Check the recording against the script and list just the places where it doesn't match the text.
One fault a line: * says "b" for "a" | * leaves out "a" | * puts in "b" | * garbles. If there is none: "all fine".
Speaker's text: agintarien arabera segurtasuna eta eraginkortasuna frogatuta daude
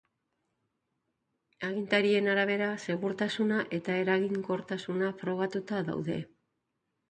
all fine